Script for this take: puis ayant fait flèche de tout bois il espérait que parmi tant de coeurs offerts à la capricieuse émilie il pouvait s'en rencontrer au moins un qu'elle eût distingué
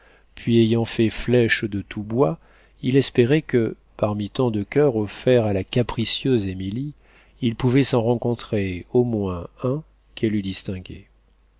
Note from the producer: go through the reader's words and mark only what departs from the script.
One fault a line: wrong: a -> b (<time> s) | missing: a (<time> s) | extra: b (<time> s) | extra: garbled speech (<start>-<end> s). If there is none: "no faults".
no faults